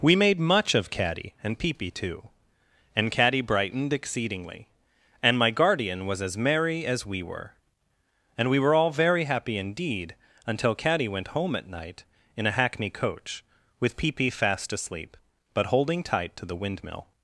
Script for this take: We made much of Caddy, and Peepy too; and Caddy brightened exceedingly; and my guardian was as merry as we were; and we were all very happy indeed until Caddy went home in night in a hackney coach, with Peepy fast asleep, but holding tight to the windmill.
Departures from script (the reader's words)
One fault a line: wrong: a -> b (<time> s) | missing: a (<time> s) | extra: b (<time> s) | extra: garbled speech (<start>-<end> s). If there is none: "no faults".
wrong: in -> at (11.6 s)